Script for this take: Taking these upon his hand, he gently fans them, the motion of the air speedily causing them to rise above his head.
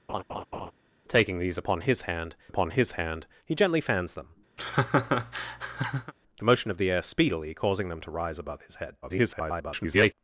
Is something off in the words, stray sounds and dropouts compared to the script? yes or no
yes